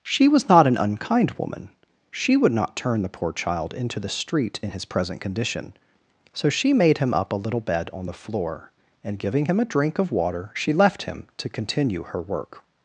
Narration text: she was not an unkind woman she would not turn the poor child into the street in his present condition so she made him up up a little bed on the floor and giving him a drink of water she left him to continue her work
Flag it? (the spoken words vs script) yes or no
yes